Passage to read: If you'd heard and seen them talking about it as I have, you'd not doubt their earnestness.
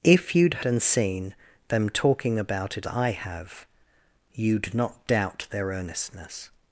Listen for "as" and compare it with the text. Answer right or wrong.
wrong